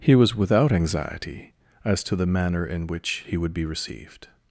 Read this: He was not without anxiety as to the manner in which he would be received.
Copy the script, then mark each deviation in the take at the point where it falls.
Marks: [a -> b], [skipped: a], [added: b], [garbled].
He was [skipped: not] without anxiety as to the manner in which he would be received.